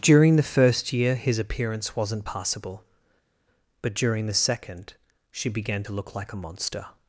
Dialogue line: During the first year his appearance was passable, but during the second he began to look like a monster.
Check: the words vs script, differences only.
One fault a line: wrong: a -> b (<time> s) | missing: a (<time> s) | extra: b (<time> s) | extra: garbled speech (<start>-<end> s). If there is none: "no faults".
wrong: was -> wasn't (1.9 s)
wrong: he -> she (5.3 s)